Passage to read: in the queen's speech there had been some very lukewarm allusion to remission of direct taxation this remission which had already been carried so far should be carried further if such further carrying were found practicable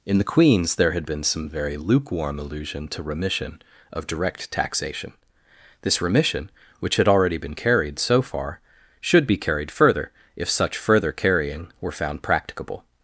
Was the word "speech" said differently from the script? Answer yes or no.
yes